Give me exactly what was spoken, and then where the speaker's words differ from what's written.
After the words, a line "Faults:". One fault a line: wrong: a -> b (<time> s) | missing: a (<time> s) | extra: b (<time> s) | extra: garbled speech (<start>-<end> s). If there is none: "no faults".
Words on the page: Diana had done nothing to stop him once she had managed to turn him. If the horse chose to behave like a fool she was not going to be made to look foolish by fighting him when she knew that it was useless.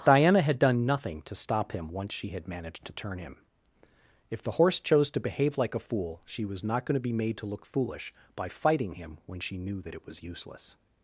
Diana had done nothing to stop him once she had managed to turn him. If the horse chose to behave like a fool she was not going to be made to look foolish by fighting him when she knew that it was useless.
Faults:
no faults